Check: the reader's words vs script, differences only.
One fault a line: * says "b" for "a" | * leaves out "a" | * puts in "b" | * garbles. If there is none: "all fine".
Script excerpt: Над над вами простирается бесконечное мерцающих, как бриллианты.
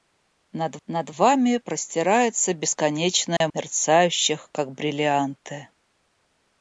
all fine